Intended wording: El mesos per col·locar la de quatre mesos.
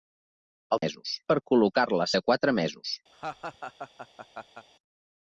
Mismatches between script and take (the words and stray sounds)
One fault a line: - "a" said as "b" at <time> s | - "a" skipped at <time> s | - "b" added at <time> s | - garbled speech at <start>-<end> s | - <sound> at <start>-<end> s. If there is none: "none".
- laugh at 3.1-4.7 s